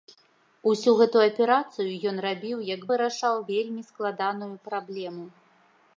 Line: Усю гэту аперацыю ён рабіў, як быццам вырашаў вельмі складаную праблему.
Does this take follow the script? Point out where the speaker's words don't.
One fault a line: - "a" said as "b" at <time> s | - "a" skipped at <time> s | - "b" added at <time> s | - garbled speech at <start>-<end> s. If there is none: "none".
- "быццам" skipped at 2.8 s